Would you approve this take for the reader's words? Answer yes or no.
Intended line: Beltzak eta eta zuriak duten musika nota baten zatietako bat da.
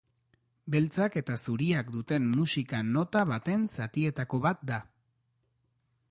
no